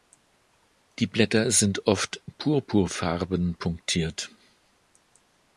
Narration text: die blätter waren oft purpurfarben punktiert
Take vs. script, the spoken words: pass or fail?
fail